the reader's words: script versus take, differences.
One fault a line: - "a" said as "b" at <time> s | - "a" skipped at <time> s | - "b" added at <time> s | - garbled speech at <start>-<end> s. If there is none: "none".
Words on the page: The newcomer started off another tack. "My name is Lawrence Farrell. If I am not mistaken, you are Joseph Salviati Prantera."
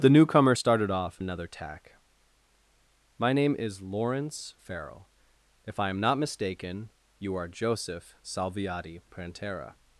none